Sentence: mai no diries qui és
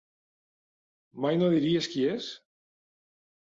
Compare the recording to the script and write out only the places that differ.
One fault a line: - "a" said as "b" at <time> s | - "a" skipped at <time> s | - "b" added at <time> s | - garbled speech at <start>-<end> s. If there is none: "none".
none